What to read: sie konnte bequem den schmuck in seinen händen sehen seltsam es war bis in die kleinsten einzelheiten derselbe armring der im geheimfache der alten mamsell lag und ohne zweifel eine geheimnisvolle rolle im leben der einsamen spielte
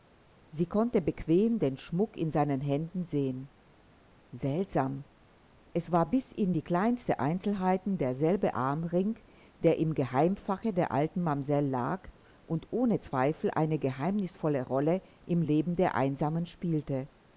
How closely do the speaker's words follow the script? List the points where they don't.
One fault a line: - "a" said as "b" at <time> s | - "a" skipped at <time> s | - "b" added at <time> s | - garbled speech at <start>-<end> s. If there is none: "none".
none